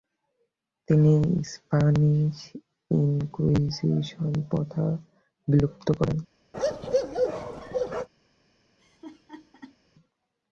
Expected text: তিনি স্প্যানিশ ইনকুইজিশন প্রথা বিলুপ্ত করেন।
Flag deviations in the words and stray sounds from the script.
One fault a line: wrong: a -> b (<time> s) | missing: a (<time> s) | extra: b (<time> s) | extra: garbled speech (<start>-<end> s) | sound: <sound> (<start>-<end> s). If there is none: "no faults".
sound: bark (6.5-8.1 s)
sound: laugh (8.8-9.8 s)